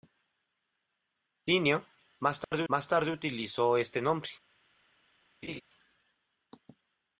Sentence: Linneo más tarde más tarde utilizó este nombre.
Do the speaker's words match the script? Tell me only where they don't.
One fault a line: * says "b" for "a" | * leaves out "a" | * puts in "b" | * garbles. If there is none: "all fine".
all fine